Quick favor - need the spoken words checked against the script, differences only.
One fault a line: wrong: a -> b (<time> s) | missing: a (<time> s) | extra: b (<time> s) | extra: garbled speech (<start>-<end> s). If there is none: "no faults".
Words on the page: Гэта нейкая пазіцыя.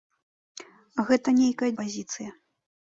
no faults